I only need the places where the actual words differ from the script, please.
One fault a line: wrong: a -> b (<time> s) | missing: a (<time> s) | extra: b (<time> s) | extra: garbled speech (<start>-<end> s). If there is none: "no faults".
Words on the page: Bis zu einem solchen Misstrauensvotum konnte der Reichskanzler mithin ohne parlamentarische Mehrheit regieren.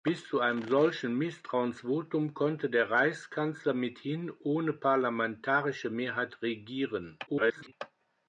extra: garbled speech (7.3-7.7 s)